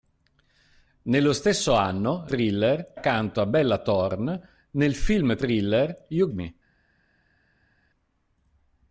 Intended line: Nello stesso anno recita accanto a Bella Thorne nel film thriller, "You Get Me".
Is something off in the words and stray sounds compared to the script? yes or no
yes